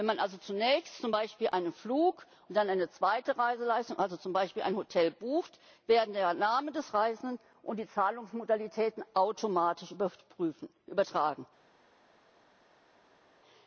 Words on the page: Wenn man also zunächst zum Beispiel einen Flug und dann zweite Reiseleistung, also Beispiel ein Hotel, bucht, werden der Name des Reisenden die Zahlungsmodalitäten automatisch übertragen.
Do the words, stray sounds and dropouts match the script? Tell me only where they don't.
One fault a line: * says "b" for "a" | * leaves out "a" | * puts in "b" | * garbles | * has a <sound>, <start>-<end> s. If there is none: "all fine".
* puts in "eine"
* puts in "zum"
* puts in "und"